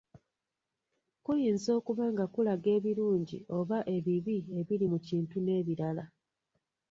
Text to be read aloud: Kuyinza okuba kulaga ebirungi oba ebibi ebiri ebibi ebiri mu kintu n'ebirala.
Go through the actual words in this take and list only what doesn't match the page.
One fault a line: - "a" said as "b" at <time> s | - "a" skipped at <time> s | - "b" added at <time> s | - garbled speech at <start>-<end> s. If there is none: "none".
- "nga" added at 2.1 s
- "ebibi ebiri" skipped at 4.9 s